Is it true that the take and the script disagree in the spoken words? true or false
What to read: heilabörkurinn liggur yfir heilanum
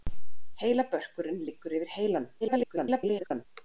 true